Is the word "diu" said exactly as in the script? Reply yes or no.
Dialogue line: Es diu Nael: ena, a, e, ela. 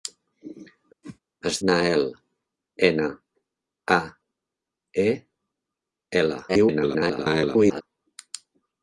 no